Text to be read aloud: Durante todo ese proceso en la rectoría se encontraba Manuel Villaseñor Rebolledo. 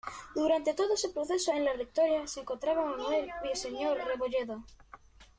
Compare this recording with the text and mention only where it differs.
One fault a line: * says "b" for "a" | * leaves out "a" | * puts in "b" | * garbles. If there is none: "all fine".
all fine